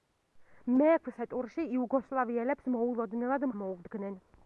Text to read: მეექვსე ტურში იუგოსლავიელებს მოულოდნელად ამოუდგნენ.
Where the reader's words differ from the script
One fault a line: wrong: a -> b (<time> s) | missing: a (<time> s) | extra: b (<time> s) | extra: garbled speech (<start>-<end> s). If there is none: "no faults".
no faults